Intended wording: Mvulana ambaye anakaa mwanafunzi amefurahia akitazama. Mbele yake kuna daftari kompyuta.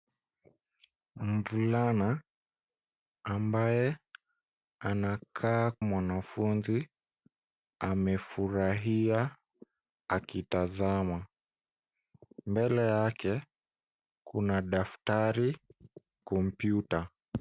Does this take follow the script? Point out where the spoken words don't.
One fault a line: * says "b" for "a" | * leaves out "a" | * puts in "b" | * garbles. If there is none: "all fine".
all fine